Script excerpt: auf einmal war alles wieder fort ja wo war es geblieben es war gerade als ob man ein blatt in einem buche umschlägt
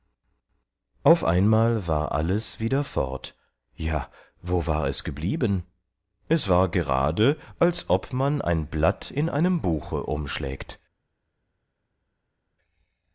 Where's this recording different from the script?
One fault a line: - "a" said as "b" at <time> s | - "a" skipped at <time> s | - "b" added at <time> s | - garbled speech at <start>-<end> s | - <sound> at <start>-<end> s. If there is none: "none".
none